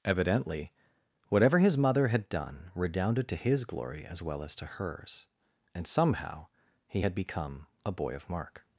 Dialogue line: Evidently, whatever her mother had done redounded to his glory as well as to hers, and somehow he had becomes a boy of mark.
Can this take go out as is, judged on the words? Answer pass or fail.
fail